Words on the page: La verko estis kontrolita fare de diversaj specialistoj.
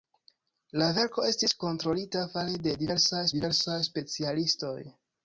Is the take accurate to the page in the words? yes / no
no